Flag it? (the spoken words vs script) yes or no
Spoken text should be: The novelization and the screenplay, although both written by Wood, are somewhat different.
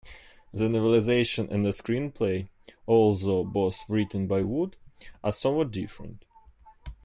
no